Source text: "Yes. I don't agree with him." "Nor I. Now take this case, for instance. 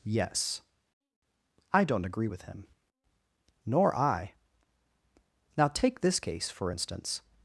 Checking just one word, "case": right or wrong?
right